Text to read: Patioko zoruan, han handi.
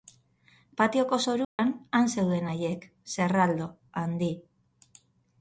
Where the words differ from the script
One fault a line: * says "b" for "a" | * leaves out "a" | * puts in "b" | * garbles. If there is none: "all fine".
* puts in "zeuden haiek zerraldo"